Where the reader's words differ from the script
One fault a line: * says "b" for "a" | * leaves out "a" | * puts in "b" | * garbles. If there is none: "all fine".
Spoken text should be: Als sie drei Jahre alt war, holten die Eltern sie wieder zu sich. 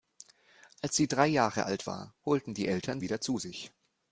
* leaves out "sie"